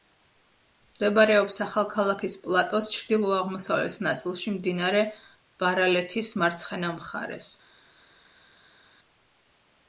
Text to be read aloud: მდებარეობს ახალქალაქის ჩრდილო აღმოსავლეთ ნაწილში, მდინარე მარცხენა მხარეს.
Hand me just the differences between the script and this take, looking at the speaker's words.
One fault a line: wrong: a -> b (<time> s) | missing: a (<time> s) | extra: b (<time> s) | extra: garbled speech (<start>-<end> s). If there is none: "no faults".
extra: პლატოს (2.5 s)
extra: ბარალეთის (5.7 s)